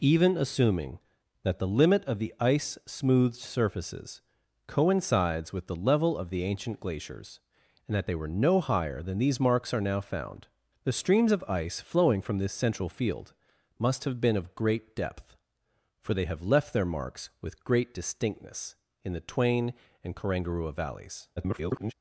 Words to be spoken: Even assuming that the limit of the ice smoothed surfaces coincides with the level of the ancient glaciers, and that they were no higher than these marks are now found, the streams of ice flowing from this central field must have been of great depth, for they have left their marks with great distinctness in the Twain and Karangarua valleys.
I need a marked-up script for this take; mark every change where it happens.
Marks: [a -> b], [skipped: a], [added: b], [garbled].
Even assuming that the limit of the ice smoothed surfaces coincides with the level of the ancient glaciers, and that they were no higher than these marks are now found, the streams of ice flowing from this central field must have been of great depth, for they have left their marks with great distinctness in the Twain and Karangarua valleys. [garbled]